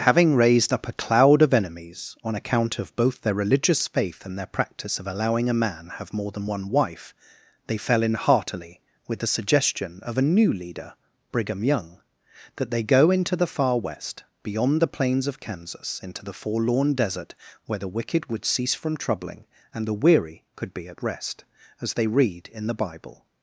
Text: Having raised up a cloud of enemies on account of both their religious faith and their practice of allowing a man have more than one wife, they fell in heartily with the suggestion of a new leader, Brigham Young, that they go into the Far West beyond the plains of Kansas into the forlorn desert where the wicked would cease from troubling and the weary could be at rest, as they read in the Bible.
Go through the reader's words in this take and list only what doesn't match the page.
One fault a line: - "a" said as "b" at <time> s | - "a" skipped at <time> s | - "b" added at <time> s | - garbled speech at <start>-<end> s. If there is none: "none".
none